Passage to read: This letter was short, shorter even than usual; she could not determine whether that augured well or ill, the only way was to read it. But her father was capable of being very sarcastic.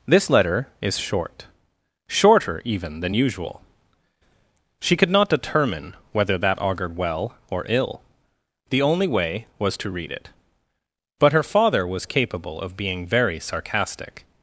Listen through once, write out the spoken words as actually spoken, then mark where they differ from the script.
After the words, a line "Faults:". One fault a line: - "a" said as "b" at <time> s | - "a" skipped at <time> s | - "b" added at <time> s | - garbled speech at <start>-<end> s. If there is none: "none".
This letter is short, shorter even than usual; she could not determine whether that augured well or ill, the only way was to read it. But her father was capable of being very sarcastic.
Faults:
- "was" said as "is" at 0.8 s